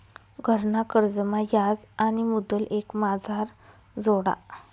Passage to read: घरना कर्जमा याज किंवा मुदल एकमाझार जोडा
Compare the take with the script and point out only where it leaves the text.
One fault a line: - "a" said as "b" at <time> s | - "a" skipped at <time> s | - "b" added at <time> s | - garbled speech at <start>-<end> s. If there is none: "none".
- "किंवा" said as "आणि" at 2.0 s